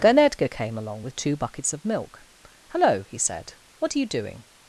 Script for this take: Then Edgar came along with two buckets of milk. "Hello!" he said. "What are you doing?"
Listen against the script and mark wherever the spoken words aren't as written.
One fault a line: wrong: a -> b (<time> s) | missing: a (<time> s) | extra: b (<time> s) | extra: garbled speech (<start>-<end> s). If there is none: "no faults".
no faults